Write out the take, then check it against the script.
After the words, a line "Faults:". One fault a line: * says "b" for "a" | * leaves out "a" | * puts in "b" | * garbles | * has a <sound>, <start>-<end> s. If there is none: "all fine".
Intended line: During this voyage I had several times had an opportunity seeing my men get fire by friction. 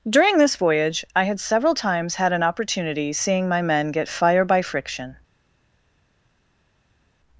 During this voyage I had several times had an opportunity seeing my men get fire by friction.
Faults:
all fine